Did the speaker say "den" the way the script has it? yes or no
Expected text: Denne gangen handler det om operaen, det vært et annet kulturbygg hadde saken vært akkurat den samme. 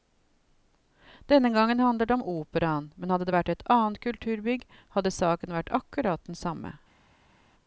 yes